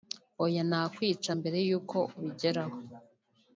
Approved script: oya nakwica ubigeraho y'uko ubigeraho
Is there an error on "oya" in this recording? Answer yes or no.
no